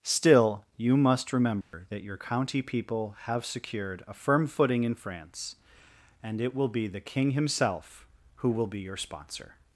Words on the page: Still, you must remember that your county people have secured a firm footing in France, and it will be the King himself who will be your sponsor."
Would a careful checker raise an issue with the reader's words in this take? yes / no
no